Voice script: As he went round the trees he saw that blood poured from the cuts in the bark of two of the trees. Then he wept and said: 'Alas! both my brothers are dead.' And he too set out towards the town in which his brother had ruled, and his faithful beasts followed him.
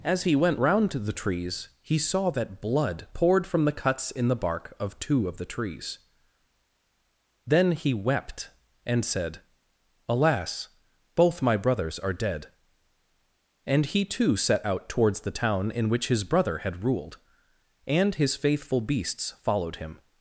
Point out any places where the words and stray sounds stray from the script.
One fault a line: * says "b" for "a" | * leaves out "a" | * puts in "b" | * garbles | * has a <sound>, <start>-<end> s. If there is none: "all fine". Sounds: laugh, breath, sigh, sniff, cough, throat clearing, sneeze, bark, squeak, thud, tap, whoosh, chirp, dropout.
* puts in "to"